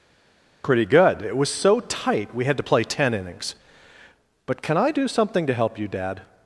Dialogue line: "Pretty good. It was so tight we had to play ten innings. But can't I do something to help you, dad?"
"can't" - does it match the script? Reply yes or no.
no